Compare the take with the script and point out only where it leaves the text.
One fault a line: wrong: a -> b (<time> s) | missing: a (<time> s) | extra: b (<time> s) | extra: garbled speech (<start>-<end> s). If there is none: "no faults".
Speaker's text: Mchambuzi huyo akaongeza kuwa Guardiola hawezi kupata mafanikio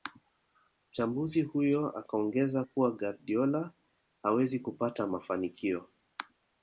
no faults